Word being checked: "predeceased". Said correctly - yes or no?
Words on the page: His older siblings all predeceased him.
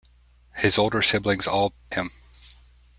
no